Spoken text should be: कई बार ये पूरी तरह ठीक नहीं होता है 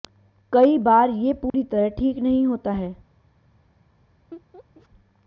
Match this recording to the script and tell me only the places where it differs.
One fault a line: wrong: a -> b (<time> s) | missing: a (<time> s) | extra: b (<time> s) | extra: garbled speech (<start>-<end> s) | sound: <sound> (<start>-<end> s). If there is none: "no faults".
sound: dropout (1.5-1.5 s)
sound: laugh (4.3-4.9 s)